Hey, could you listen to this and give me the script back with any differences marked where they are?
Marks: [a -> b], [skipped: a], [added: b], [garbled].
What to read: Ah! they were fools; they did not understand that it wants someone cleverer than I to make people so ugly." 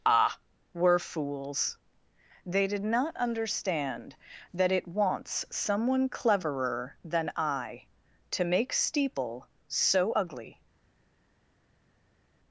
Ah! [skipped: they] were fools; they did not understand that it wants someone cleverer than I to make [people -> steeple] so ugly."